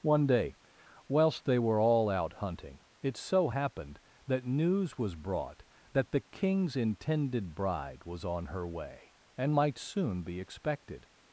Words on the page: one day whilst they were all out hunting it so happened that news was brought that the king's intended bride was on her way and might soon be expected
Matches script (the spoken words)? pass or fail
pass